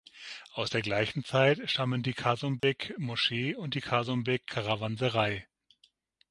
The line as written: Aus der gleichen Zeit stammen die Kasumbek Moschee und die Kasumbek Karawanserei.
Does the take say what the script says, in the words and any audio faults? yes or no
no